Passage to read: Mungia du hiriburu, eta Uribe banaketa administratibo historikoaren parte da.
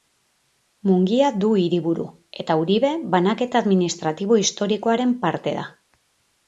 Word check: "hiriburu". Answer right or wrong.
right